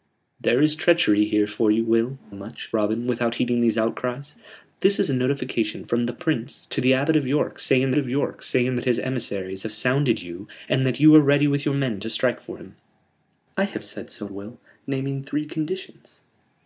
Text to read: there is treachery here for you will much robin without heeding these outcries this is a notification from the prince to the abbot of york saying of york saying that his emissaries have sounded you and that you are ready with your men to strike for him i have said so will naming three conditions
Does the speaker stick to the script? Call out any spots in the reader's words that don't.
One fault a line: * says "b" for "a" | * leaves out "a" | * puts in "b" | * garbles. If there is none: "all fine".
all fine